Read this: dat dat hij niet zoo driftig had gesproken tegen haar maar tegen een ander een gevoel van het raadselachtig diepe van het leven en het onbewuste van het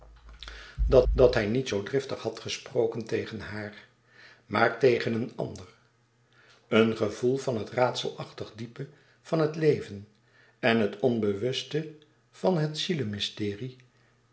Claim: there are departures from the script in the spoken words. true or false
false